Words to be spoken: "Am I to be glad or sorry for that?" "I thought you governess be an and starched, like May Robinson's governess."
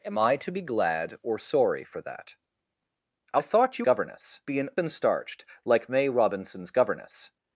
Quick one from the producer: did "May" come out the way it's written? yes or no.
yes